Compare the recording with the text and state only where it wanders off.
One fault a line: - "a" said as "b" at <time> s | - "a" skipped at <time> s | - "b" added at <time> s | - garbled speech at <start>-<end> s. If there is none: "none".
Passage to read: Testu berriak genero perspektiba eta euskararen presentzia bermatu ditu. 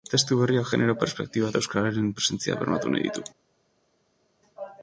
- "nahi" added at 2.9 s